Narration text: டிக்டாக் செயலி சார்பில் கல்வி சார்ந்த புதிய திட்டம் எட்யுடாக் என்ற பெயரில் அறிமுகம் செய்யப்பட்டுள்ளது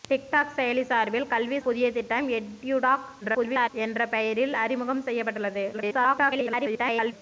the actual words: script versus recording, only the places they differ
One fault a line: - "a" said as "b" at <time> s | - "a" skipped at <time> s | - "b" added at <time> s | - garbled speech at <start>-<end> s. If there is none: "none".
- "சார்ந்த" skipped at 1.6 s
- garbled speech at 3.2-3.7 s
- garbled speech at 5.7-7.1 s